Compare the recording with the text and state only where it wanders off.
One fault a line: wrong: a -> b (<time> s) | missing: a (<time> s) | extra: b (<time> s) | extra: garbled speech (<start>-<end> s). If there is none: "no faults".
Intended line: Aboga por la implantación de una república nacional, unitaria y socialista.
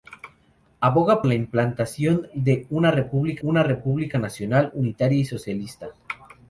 missing: por (1.2 s)
extra: una república (3.4 s)